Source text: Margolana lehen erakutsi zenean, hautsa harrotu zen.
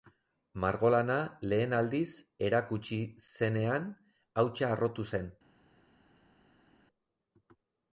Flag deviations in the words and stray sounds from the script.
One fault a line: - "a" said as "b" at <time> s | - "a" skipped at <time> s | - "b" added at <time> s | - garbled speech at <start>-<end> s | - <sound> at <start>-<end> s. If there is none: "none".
- "aldiz" added at 1.8 s